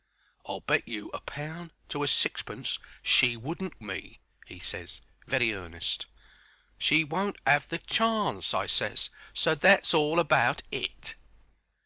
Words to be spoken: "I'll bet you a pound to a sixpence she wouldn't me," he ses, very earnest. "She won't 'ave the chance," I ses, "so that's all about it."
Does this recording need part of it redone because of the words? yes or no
no